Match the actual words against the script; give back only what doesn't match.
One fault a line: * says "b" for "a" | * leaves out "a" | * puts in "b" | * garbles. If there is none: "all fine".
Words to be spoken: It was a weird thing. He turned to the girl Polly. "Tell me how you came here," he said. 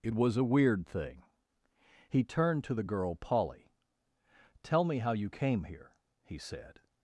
all fine